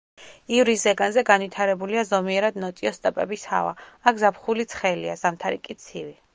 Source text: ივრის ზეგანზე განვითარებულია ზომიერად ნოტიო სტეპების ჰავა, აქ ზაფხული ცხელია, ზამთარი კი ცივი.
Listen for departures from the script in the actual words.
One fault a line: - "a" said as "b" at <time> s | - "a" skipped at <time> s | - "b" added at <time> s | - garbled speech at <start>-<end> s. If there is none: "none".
none